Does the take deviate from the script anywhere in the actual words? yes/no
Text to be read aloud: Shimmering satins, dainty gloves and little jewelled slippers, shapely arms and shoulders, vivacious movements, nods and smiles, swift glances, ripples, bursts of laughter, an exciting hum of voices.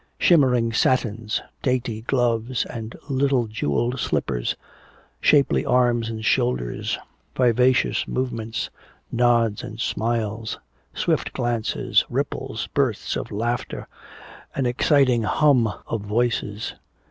no